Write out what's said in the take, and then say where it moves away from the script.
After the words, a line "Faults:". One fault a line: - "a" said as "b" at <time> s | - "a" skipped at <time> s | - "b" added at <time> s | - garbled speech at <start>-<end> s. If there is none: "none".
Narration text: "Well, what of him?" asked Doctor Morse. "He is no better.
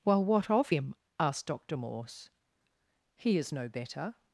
"Well, what of him?" asked Doctor Morse. "He is no better.
Faults:
none